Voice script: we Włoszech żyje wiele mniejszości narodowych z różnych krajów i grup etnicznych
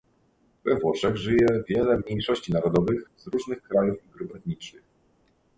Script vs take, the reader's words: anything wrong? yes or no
no